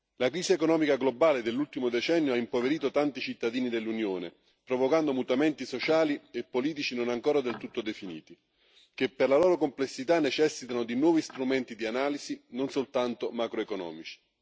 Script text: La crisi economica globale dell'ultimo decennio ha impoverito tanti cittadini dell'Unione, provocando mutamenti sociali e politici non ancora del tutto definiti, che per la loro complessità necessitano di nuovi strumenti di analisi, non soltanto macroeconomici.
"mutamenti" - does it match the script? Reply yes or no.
yes